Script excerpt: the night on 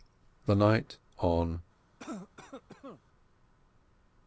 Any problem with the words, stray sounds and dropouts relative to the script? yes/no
yes